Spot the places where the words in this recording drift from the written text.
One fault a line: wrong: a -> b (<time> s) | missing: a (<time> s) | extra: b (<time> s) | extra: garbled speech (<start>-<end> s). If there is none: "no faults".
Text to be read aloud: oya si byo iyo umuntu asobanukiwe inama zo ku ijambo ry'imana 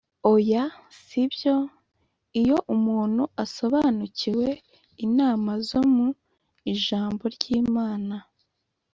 wrong: ku -> mu (5.9 s)